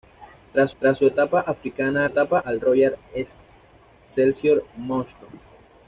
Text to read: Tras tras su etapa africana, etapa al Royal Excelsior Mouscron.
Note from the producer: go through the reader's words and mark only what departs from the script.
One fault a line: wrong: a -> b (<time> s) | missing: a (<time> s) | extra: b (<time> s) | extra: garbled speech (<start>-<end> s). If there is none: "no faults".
no faults